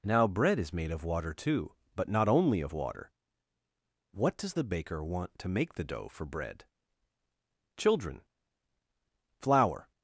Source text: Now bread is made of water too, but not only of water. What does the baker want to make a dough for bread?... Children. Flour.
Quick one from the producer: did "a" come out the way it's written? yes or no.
no